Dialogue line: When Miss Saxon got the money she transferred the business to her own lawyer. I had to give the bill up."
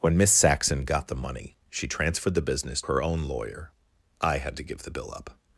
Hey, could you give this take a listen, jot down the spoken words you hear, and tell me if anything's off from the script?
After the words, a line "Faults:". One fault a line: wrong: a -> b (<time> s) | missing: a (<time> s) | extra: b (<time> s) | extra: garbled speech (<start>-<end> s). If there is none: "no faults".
When Miss Saxon got the money she transferred the business her own lawyer. I had to give the bill up."
Faults:
missing: to (2.8 s)